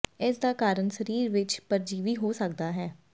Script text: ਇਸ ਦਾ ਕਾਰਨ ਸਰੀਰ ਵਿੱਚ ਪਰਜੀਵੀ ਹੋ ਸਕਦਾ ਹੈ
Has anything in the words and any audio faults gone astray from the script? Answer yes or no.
no